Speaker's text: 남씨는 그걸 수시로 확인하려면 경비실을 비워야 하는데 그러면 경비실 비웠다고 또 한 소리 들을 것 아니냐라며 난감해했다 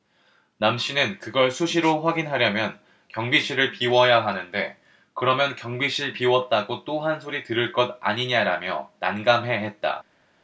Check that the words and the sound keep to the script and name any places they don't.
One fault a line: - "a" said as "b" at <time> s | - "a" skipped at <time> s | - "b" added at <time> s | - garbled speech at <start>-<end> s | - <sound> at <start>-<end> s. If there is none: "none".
none